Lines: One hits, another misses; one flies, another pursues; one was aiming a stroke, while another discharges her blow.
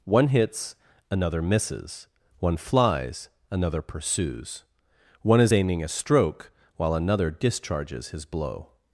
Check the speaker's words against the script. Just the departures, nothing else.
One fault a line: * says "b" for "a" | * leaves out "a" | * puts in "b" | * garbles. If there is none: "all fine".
* says "is" for "was"
* says "his" for "her"